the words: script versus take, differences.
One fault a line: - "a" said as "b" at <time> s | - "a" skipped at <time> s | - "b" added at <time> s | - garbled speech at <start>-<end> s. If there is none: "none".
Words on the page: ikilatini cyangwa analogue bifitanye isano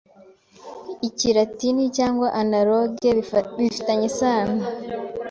none